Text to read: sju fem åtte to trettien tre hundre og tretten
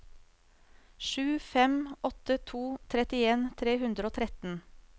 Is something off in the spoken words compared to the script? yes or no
no